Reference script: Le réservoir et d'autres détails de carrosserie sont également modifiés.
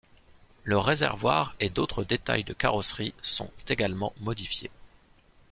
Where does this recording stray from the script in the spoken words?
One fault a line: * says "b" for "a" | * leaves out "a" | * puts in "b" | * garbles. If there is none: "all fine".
all fine